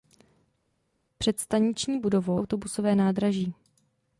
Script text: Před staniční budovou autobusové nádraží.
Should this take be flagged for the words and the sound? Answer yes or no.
no